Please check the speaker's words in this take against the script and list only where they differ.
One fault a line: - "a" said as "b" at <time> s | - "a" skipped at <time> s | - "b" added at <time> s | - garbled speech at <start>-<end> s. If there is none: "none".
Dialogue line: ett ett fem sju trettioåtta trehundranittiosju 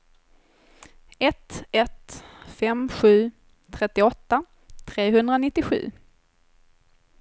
none